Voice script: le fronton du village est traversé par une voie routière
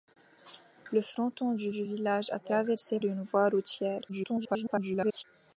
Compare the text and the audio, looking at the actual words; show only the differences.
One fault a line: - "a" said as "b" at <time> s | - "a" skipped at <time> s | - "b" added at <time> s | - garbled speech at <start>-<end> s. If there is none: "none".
- "du" added at 1.7 s
- "par" skipped at 3.0 s
- garbled speech at 4.1-5.2 s